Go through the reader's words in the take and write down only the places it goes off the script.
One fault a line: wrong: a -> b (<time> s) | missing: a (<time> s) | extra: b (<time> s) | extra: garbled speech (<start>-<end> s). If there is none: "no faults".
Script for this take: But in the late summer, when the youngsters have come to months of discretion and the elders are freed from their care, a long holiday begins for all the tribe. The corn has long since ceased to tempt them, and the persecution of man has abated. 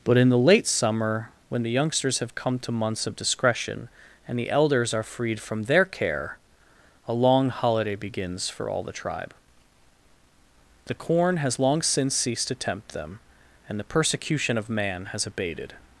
no faults